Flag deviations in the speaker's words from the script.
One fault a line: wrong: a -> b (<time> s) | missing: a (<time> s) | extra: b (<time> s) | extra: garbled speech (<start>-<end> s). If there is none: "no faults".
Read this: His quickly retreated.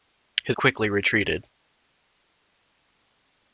no faults